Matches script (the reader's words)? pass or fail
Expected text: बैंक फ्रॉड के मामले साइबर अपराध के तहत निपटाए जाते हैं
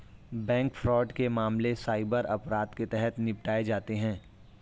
pass